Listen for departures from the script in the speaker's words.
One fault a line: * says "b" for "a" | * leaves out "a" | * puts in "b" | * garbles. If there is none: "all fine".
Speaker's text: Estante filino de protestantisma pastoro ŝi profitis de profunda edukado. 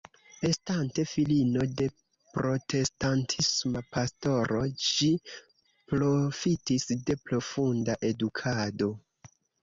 all fine